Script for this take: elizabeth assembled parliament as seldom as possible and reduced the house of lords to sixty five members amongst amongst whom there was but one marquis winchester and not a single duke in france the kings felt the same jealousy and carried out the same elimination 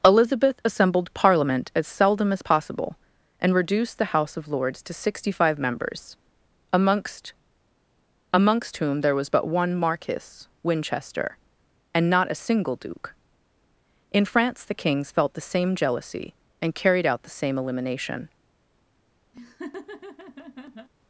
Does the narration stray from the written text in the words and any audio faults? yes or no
yes